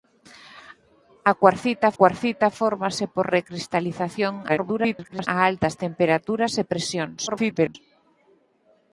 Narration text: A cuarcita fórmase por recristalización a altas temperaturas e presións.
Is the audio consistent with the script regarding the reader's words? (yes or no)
no